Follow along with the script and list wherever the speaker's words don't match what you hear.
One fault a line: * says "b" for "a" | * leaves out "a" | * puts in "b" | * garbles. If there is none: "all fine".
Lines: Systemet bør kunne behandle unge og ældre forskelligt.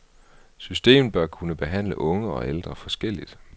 all fine